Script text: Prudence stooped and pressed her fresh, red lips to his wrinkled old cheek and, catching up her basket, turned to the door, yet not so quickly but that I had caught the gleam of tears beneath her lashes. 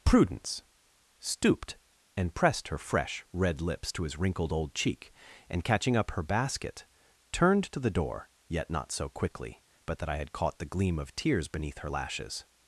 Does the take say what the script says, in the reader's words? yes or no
yes